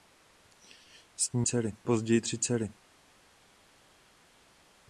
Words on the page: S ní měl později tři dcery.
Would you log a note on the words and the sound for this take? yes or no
yes